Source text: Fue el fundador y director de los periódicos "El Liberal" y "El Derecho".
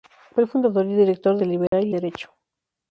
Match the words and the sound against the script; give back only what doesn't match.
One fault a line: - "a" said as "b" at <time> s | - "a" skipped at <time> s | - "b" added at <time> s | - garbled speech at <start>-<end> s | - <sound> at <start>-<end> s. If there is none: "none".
- "los periódicos" skipped at 1.4 s
- dropout at 1.7-1.7 s
- "El" skipped at 2.0 s